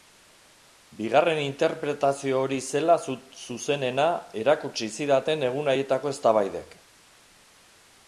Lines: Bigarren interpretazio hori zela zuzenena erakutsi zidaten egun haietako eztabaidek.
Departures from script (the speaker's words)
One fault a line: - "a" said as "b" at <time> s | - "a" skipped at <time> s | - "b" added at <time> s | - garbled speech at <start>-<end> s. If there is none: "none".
none